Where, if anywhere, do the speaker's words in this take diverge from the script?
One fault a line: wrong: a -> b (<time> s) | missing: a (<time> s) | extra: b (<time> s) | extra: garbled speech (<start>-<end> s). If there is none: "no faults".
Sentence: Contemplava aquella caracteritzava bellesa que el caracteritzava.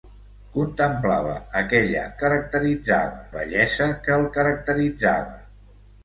no faults